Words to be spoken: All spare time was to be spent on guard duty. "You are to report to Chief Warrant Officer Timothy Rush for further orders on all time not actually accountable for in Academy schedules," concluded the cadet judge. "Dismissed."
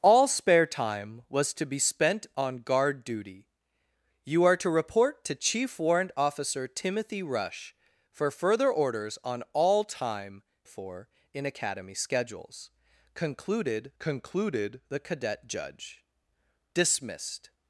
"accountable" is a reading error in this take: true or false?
true